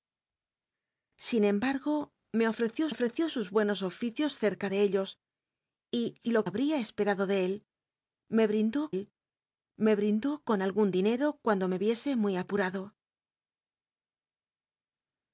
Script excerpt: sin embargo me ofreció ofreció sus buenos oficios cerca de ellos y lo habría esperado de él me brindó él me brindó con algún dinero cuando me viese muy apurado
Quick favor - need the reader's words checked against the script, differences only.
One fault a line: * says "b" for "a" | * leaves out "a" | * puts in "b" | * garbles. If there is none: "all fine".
all fine